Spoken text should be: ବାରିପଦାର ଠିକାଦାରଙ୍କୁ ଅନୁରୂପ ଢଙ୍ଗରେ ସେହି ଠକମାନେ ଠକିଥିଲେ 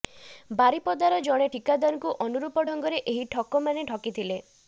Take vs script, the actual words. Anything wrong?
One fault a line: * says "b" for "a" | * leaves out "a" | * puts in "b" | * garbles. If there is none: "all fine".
* puts in "ଜଣେ"
* says "ଏହି" for "ସେହି"